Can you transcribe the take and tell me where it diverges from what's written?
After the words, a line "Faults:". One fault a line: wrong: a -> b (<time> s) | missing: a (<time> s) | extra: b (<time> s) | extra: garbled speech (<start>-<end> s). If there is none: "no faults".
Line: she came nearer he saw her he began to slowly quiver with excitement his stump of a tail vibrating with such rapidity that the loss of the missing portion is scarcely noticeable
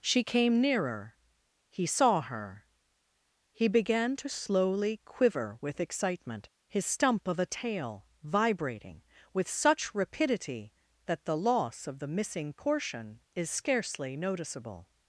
she came nearer he saw her he began to slowly quiver with excitement his stump of a tail vibrating with such rapidity that the loss of the missing portion is scarcely noticeable
Faults:
no faults